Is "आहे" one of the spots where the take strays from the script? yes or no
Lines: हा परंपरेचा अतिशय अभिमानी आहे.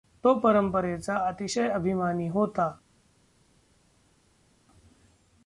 yes